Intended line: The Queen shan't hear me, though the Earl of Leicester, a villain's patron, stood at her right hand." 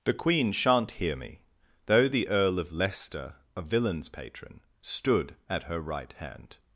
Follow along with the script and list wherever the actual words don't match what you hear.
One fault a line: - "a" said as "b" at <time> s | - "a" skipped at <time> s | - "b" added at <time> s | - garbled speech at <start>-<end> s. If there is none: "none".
none